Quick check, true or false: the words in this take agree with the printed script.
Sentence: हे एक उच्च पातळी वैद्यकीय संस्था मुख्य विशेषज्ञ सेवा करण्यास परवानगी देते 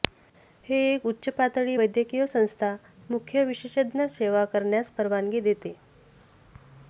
true